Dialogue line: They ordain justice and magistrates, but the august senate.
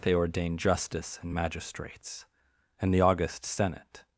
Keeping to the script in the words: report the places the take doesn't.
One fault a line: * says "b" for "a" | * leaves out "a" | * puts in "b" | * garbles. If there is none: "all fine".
* says "and" for "but"